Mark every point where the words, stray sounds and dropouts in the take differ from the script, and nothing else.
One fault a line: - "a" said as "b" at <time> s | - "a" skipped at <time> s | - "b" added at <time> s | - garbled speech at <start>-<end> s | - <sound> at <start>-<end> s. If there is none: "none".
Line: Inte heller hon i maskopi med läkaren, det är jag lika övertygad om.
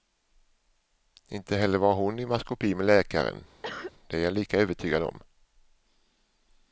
- "var" added at 1.8 s
- cough at 3.6-3.9 s